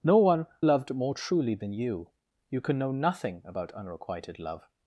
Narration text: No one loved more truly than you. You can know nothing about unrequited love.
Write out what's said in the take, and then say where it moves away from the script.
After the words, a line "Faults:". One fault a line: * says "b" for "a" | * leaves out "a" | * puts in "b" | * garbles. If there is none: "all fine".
No one loved more truly than you. You can know nothing about unrequited love.
Faults:
all fine